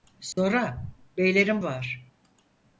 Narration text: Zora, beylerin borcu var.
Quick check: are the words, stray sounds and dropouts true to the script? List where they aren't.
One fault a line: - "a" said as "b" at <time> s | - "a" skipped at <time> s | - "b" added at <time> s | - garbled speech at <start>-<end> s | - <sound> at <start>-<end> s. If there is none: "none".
- dropout at 0.3-0.4 s
- "borcu" skipped at 1.6 s